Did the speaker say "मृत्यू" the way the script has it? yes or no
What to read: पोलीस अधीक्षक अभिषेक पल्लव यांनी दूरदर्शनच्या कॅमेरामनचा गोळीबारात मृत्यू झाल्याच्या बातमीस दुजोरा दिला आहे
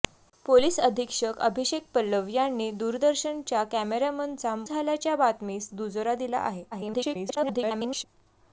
no